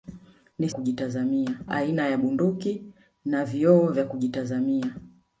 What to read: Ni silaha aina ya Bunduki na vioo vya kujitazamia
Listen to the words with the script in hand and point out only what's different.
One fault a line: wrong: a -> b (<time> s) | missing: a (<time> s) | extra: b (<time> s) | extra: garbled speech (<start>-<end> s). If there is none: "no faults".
wrong: silaha -> kujitazamia (0.7 s)